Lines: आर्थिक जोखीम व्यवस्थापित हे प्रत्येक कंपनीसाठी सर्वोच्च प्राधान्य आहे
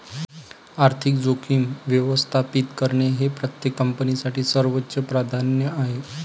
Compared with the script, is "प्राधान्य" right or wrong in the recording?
right